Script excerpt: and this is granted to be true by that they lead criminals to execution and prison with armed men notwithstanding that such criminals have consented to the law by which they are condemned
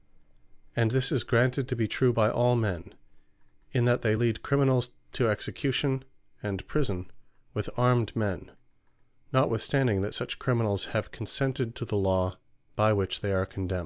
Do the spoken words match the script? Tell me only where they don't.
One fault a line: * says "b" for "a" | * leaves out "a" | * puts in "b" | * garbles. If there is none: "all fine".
* puts in "all men in"